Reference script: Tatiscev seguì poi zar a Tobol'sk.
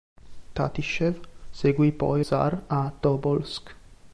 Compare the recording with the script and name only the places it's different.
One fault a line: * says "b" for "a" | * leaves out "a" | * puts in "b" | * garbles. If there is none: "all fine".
all fine